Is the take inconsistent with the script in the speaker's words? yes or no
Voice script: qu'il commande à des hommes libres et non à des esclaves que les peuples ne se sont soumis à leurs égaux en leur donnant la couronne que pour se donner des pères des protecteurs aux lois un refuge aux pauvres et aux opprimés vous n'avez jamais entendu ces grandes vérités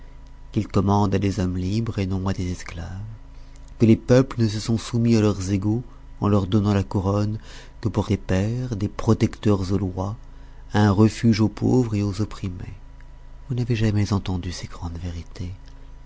yes